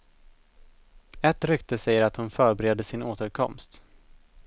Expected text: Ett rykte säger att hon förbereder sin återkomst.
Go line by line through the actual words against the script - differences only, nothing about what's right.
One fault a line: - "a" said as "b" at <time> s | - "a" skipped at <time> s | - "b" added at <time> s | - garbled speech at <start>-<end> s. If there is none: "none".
none